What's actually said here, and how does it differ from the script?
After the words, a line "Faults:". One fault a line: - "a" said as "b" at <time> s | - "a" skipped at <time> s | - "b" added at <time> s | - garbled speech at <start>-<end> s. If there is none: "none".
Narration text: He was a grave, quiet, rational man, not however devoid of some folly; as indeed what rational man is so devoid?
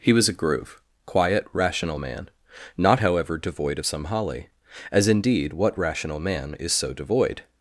He was a groove, quiet, rational man, not however devoid of some holly; as indeed what rational man is so devoid?
Faults:
- "grave" said as "groove" at 0.3 s
- "folly" said as "holly" at 4.0 s